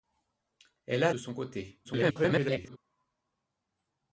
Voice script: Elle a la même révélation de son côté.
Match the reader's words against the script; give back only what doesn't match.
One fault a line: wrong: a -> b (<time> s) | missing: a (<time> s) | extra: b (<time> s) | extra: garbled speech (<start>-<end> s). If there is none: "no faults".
missing: la même révélation (1.1 s)
extra: garbled speech (1.8-2.8 s)